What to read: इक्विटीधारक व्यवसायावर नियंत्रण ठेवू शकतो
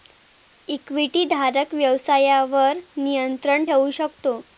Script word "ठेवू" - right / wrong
right